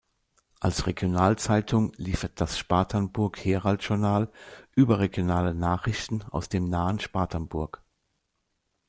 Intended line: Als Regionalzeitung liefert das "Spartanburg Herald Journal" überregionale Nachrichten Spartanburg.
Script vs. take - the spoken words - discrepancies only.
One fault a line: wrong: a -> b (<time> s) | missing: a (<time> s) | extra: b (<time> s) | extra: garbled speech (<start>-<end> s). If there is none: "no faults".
extra: aus dem nahen (6.3 s)